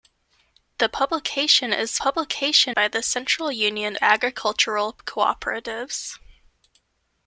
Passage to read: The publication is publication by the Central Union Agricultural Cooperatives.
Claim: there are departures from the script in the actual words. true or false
false